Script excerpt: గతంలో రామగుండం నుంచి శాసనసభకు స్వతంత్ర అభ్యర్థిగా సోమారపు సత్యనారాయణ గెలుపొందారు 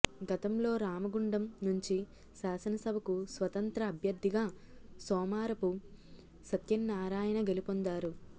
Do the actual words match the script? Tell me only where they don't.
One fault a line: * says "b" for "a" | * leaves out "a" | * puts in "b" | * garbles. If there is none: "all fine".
all fine